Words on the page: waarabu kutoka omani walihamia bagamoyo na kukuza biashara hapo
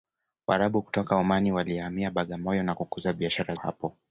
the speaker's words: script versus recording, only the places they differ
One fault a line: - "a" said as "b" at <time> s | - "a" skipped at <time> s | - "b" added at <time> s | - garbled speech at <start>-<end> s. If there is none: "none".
none